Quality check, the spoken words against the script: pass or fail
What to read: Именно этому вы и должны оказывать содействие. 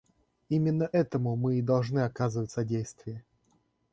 fail